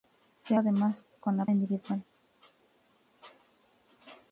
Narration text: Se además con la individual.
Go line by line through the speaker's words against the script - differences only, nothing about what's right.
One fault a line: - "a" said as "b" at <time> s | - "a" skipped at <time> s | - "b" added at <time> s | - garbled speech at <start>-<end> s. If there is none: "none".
none